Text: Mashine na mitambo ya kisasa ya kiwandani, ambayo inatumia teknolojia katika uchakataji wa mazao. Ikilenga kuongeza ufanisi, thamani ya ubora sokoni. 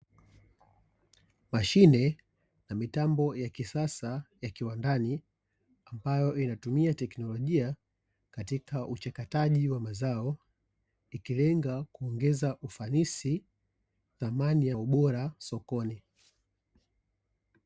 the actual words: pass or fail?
pass